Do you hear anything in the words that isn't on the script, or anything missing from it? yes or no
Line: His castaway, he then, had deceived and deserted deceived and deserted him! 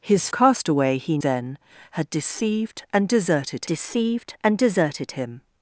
no